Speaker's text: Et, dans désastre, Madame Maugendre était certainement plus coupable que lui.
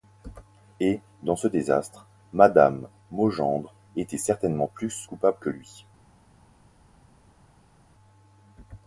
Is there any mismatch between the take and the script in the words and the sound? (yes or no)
yes